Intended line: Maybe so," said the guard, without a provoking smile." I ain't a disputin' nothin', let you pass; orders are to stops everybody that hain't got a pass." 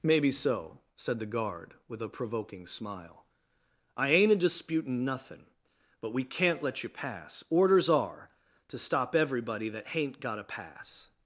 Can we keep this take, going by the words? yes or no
no